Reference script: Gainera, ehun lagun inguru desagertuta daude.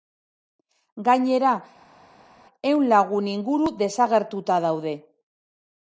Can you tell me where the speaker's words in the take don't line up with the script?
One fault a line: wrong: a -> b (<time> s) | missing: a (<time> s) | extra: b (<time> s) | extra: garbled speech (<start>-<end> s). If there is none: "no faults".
no faults